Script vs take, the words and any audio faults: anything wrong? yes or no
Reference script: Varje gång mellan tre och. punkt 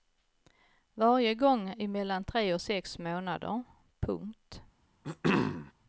yes